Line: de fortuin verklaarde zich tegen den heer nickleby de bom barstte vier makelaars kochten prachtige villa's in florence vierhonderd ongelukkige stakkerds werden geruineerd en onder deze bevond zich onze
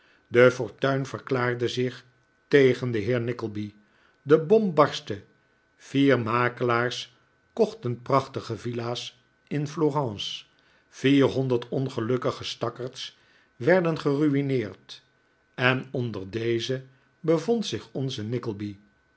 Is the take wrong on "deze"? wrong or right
right